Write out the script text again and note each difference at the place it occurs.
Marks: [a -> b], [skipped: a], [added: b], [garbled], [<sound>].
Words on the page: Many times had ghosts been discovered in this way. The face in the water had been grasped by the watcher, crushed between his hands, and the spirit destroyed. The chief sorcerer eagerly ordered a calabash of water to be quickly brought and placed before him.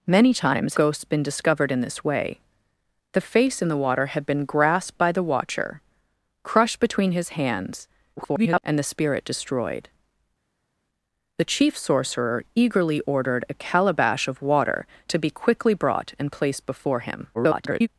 Many times [skipped: had] ghosts been discovered in this way. The face in the water had been grasped by the watcher, crushed between his hands, [garbled] and the spirit destroyed. The chief sorcerer eagerly ordered a calabash of water to be quickly brought and placed before him. [garbled]